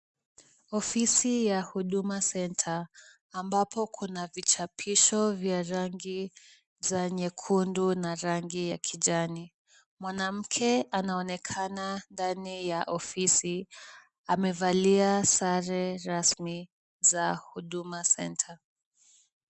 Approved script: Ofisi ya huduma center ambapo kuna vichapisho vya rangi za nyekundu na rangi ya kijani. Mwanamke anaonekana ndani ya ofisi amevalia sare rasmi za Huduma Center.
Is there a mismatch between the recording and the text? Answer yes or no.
no